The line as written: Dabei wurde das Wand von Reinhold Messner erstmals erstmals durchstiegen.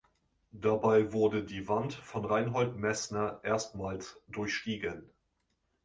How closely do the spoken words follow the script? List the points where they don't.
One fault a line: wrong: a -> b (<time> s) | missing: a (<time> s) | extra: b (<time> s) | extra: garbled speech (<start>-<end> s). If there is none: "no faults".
wrong: das -> die (1.4 s)
missing: erstmals (4.2 s)